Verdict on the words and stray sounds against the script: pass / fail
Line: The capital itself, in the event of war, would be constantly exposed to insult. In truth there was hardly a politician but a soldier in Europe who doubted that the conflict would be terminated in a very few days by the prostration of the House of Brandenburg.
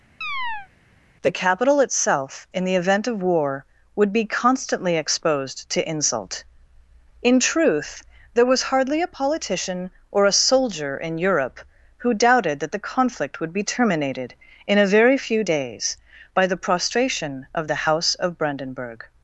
fail